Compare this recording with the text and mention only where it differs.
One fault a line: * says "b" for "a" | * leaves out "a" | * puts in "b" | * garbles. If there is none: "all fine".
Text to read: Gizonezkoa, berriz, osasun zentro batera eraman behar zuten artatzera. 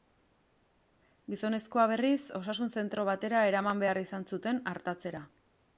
* puts in "izan"